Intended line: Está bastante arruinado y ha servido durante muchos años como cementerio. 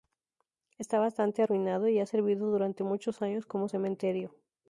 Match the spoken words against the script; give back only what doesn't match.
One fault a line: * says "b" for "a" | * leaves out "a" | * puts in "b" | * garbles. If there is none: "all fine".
all fine